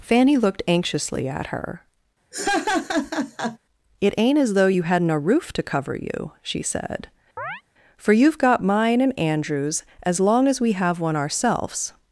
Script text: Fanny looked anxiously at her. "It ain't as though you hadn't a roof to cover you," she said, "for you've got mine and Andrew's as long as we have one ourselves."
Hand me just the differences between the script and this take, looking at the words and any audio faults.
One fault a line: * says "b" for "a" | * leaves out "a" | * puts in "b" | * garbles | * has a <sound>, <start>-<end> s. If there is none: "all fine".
* has a laugh, 2.3-3.6 s
* has a chirp, 7.4-7.6 s